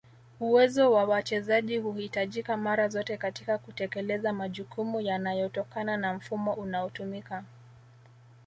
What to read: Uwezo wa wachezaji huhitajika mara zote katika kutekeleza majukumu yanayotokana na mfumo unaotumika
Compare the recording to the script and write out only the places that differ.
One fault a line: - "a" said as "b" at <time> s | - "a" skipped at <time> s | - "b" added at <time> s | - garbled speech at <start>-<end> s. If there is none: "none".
none